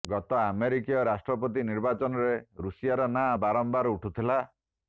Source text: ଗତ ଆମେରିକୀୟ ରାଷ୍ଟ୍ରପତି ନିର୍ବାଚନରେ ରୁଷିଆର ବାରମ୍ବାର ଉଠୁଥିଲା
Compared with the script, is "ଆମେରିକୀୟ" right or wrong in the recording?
right